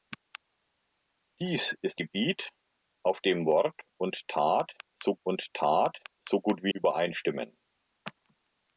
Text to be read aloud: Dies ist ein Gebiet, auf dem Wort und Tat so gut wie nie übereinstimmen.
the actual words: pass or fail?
fail